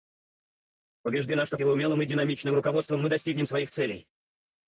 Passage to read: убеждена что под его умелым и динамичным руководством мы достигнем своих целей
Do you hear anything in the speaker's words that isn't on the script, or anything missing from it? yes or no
yes